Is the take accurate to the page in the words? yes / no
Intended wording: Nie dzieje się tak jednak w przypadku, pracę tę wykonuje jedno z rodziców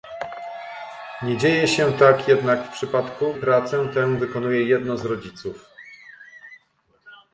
yes